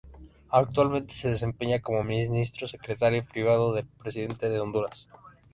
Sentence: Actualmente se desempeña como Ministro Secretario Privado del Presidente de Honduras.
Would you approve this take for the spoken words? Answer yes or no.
yes